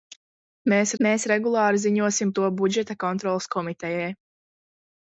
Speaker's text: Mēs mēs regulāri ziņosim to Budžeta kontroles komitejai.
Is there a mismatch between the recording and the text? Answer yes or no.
no